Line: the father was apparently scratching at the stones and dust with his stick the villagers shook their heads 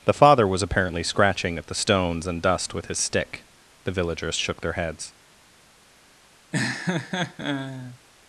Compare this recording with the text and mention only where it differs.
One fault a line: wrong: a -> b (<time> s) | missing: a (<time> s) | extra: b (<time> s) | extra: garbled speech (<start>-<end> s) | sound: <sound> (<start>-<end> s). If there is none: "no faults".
sound: laugh (6.5-8.0 s)